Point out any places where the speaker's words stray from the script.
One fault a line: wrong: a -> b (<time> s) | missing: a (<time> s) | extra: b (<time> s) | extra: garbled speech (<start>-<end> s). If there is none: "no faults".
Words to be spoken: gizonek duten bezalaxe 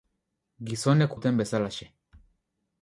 no faults